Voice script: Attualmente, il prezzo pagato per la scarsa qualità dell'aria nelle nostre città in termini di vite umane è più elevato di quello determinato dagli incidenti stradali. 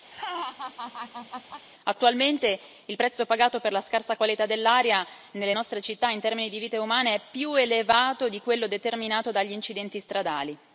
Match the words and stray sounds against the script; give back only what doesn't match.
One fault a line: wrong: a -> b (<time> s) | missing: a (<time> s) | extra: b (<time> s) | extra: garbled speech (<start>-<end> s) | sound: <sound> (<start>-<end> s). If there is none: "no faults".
sound: laugh (0.1-1.6 s)